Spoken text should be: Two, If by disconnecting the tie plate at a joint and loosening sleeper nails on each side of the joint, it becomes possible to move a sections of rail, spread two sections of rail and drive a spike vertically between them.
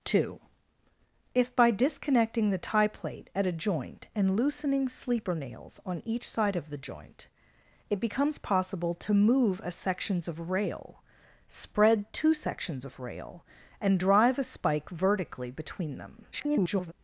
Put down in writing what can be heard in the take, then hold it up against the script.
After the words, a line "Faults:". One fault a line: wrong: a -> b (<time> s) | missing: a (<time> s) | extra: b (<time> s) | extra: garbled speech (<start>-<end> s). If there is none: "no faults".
Two, If by disconnecting the tie plate at a joint and loosening sleeper nails on each side of the joint, it becomes possible to move a sections of rail, spread two sections of rail and drive a spike vertically between them. [garbled]
Faults:
extra: garbled speech (16.3-16.9 s)